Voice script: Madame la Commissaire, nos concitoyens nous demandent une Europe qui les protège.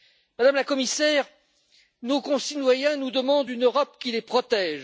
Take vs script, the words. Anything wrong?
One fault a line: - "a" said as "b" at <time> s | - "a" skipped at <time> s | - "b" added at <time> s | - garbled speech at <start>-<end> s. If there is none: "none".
none